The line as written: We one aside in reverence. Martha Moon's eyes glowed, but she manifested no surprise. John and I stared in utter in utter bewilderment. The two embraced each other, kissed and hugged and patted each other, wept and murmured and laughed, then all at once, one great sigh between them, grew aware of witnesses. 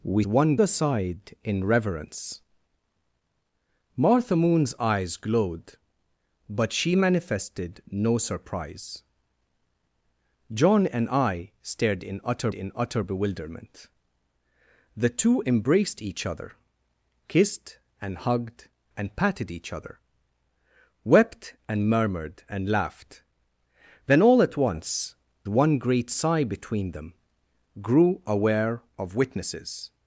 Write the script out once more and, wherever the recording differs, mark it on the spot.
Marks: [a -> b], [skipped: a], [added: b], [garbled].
We one aside in reverence. Martha Moon's eyes glowed, but she manifested no surprise. John and I stared in utter in utter bewilderment. The two embraced each other, kissed and hugged and patted each other, wept and murmured and laughed, then all at once, one great sigh between them, grew aware of witnesses.